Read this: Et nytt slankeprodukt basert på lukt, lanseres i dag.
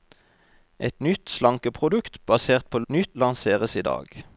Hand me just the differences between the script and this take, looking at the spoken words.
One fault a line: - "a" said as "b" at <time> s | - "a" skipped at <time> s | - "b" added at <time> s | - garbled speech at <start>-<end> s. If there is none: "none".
- "lukt" said as "nytt" at 2.9 s